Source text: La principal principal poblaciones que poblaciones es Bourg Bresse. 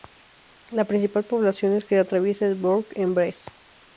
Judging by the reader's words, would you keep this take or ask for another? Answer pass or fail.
fail